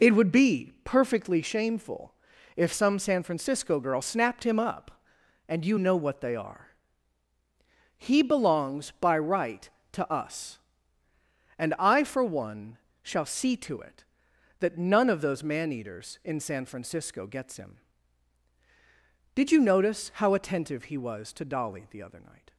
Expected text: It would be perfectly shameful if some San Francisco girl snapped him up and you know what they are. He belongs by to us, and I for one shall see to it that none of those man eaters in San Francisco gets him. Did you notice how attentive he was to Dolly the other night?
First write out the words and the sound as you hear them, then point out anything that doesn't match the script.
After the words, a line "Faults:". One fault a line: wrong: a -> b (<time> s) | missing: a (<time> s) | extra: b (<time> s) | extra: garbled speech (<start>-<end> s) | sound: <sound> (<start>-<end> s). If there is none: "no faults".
It would be perfectly shameful if some San Francisco girl snapped him up and you know what they are. He belongs by right to us, and I for one shall see to it that none of those man eaters in San Francisco gets him. Did you notice how attentive he was to Dolly the other night?
Faults:
extra: right (9.2 s)